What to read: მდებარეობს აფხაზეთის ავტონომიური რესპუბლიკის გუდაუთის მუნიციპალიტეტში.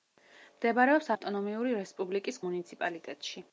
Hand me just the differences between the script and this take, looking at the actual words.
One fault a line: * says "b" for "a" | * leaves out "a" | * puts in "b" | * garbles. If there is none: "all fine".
* leaves out "აფხაზეთის"
* leaves out "გუდაუთის"